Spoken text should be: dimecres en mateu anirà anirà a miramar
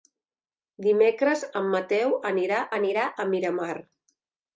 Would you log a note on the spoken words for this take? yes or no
no